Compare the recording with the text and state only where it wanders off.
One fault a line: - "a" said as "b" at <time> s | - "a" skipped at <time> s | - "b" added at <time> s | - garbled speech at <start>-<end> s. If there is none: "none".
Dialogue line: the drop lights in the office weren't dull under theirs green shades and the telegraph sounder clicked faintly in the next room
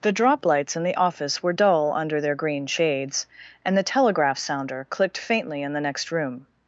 - "weren't" said as "were" at 1.4 s
- "theirs" said as "their" at 2.2 s